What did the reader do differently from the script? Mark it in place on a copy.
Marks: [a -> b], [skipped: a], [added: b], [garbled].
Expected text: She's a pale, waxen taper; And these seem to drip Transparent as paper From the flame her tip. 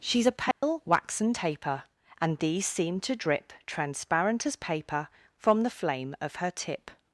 She's a pale, waxen taper; And these seem to drip Transparent as paper From the flame [added: of] her tip.